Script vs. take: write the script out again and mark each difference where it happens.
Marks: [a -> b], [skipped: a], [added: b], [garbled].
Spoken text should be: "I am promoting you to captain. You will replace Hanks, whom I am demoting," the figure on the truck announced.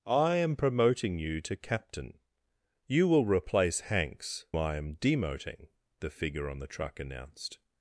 "I am promoting you to captain. You will replace Hanks, [skipped: whom] I am demoting," the figure on the truck announced.